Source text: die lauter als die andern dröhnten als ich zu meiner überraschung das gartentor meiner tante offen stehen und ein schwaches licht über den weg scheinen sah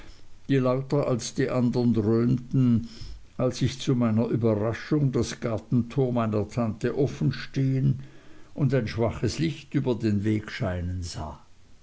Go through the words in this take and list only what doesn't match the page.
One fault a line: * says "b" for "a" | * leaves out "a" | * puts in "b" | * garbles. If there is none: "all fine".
all fine